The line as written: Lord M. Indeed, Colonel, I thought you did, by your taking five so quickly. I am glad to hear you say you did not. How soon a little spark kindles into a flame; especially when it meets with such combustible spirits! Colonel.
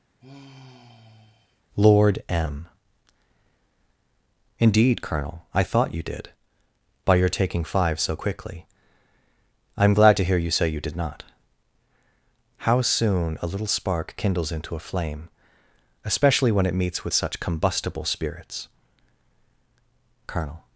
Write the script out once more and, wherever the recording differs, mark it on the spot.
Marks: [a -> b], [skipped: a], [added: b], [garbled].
Lord M. Indeed, Colonel, I thought you did, by your taking five so quickly. I am glad to hear you say you did not. How soon a little spark kindles into a flame; especially when it meets with such combustible spirits! Colonel.